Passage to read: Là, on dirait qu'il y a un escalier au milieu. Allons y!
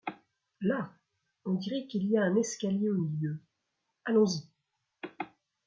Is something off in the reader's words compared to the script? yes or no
no